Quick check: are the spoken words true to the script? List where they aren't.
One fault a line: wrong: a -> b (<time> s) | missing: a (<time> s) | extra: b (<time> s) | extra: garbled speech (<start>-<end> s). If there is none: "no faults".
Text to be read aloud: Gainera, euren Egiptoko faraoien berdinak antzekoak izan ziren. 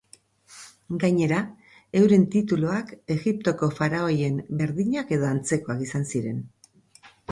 extra: tituluak (2.4 s)
extra: edo (5.2 s)